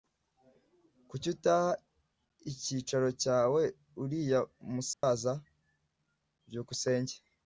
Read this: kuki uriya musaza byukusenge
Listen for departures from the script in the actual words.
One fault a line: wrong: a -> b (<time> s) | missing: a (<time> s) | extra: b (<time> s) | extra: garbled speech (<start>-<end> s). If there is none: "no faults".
extra: utaha icyicaro cyawe (1.4 s)